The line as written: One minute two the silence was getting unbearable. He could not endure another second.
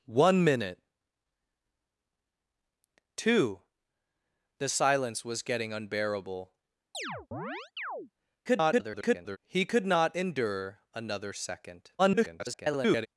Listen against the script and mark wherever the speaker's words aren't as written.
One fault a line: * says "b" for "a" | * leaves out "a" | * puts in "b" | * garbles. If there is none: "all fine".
* garbles
* garbles